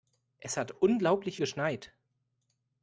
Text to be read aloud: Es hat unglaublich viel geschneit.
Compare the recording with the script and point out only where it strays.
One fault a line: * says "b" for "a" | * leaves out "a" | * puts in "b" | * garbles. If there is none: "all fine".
* leaves out "viel"